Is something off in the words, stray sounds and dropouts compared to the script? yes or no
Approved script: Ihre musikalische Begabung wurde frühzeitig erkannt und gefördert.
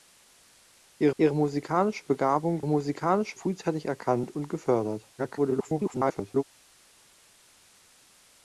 yes